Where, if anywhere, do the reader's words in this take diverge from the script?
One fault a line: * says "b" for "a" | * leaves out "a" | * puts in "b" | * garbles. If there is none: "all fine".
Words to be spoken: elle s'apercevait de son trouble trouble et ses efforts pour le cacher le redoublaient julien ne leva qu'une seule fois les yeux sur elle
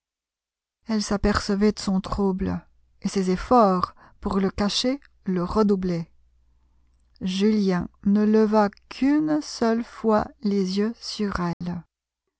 * leaves out "trouble"